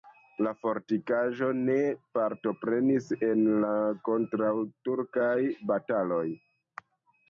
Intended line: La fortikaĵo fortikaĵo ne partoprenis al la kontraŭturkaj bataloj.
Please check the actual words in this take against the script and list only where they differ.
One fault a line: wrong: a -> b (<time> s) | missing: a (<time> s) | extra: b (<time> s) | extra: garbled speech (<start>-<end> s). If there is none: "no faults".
missing: fortikaĵo (1.5 s)
wrong: al -> en (3.3 s)